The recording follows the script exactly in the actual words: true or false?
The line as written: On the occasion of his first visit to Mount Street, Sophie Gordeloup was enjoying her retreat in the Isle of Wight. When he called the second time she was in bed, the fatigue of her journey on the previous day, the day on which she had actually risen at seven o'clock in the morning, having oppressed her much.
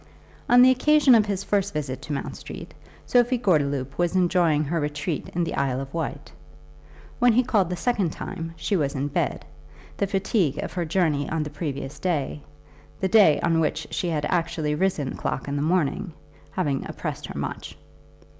false